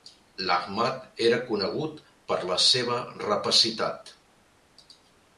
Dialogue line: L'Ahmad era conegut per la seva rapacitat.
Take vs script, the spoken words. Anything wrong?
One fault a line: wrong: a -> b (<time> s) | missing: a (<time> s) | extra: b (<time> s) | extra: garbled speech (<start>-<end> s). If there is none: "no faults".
no faults